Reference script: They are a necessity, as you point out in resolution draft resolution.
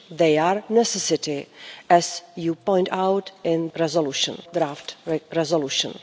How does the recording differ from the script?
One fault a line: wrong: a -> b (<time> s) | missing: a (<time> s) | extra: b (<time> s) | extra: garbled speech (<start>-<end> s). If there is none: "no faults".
no faults